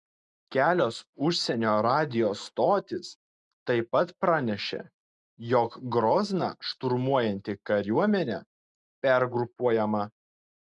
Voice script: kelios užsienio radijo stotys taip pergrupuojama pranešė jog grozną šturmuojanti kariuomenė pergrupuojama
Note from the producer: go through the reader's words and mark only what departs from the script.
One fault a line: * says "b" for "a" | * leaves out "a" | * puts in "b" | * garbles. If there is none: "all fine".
* says "pat" for "pergrupuojama"